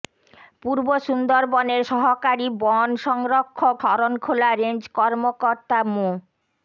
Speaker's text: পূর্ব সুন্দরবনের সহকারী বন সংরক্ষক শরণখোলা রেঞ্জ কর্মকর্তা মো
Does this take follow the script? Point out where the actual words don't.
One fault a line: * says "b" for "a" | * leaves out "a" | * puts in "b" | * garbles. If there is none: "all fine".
all fine